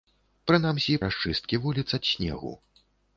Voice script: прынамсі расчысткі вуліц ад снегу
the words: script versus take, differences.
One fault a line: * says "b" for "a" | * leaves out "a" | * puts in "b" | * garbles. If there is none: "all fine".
all fine